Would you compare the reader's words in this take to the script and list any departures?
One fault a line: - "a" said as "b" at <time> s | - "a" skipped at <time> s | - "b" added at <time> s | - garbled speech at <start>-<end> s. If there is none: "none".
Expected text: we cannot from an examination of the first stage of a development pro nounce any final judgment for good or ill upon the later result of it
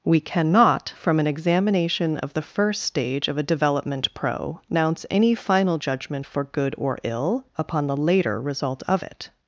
none